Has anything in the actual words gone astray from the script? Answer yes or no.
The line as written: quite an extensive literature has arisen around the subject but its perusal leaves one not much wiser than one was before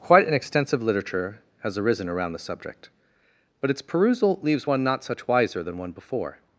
yes